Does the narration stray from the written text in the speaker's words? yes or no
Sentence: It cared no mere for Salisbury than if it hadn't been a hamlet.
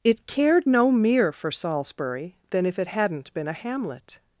no